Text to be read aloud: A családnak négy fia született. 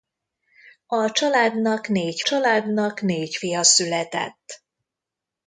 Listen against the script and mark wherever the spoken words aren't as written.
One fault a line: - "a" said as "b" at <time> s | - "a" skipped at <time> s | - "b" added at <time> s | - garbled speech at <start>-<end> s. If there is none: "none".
- "családnak négy" added at 2.2 s